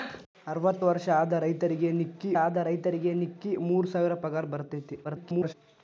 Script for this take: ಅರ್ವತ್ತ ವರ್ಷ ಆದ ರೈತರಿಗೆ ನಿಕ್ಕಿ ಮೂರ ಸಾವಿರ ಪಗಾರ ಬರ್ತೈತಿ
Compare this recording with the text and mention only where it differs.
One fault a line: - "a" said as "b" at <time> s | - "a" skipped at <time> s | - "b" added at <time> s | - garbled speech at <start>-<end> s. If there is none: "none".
- "ಆದ ರೈತರಿಗೆ ನಿಕ್ಕಿ" added at 2.4 s
- garbled speech at 5.0-5.5 s